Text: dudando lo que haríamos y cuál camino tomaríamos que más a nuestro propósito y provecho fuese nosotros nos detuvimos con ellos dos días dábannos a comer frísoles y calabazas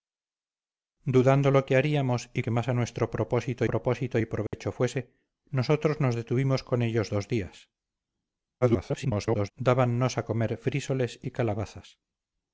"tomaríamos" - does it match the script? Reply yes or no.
no